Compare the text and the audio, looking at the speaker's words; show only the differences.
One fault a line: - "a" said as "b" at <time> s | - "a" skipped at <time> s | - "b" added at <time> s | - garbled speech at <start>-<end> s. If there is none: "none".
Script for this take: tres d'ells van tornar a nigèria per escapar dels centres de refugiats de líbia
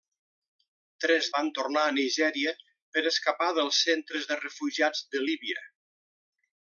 - "d'ells" skipped at 1.3 s